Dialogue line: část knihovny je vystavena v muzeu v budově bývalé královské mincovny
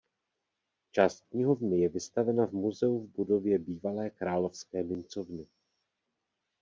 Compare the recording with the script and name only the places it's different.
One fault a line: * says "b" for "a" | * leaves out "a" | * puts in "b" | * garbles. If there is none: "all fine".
all fine